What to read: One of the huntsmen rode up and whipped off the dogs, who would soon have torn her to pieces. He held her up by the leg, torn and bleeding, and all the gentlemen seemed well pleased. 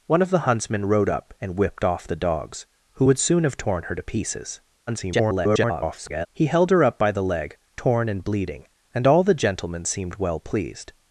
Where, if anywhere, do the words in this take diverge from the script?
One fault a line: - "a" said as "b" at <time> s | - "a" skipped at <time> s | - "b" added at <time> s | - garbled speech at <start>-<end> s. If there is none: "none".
- garbled speech at 4.9-6.3 s